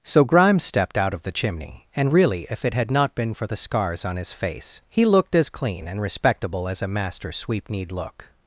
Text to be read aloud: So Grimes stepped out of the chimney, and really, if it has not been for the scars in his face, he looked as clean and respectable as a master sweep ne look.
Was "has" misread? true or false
true